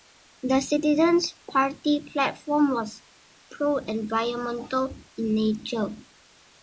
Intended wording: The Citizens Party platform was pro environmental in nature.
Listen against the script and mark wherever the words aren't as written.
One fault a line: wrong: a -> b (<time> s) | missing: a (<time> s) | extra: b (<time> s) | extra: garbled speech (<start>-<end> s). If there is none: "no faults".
no faults